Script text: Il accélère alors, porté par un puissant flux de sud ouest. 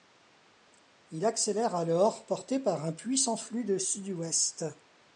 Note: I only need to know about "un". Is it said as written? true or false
true